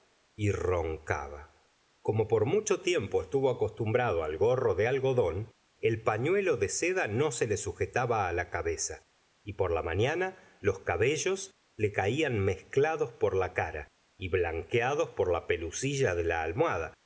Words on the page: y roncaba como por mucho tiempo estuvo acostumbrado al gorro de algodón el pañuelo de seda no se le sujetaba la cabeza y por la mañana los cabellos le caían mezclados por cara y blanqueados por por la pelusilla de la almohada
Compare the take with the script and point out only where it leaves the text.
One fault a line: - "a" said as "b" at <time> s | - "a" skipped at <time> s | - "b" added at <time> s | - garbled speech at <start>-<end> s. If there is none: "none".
- "la" added at 13.3 s
- "por" skipped at 15.3 s